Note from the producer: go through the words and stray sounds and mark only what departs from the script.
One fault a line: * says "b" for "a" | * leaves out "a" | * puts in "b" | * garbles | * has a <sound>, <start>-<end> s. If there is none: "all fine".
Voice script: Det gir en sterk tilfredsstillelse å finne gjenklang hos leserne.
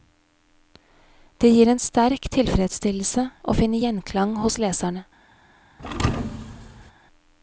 * has a thud, 5.8-6.9 s